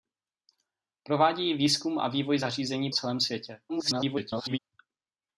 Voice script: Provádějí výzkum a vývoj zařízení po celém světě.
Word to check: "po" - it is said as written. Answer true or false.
false